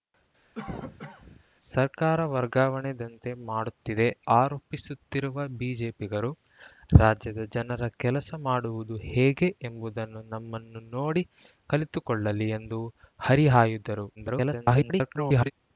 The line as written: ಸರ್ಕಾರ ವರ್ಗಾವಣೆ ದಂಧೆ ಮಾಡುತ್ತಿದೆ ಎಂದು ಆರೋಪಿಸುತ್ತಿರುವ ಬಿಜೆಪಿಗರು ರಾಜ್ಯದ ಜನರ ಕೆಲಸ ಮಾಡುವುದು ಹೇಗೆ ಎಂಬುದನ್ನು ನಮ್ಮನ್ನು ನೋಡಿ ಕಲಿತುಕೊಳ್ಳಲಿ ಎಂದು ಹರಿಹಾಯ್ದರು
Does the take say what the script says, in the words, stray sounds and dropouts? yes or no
no